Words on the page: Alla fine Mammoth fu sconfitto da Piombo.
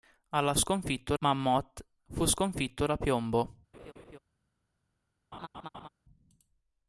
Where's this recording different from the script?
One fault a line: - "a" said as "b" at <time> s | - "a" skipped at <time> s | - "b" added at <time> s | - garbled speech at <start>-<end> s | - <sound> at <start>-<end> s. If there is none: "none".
- "fine" said as "sconfitto" at 0.5 s
- laugh at 3.7-4.2 s
- laugh at 5.3-5.9 s